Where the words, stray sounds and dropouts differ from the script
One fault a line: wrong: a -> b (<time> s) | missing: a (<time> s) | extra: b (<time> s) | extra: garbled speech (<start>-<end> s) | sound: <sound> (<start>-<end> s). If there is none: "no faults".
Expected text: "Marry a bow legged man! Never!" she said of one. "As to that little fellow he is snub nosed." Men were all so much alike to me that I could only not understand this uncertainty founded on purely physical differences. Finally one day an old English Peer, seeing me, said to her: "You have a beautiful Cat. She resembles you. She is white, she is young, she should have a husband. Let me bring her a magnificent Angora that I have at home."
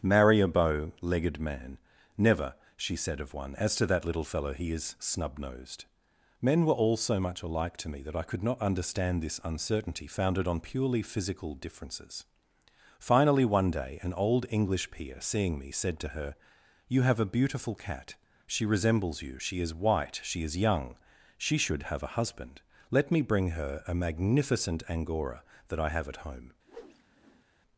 missing: only (8.4 s)
sound: whoosh (26.6-27.4 s)